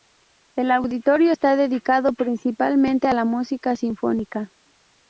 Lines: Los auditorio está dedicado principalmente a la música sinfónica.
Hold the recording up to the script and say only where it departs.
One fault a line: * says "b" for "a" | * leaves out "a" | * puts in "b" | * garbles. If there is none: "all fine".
* says "El" for "Los"